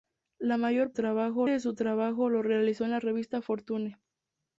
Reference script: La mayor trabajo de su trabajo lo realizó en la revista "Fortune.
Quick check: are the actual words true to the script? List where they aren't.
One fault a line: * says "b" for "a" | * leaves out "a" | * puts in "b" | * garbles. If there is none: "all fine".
all fine